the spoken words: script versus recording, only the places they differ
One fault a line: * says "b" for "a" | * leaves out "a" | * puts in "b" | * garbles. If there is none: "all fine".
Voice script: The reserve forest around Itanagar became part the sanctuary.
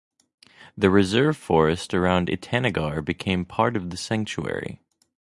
* puts in "of"